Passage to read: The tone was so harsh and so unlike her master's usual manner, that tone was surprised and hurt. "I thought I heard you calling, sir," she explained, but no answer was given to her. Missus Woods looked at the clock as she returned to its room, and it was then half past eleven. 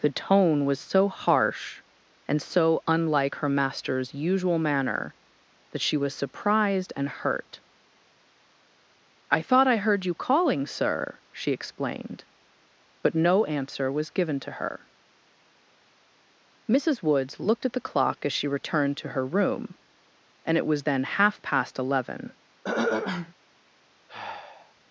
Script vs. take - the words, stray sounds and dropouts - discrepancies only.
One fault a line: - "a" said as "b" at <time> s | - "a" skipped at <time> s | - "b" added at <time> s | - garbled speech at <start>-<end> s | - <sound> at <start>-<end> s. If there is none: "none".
- "tone" said as "she" at 5.8 s
- "its" said as "her" at 19.1 s
- throat clearing at 22.6-23.3 s
- sigh at 24.1-24.7 s